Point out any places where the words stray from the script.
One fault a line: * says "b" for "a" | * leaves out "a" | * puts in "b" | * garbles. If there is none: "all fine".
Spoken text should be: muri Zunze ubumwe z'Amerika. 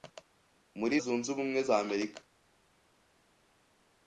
all fine